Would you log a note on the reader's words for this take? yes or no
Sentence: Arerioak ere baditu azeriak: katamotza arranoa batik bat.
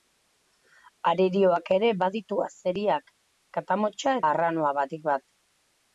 no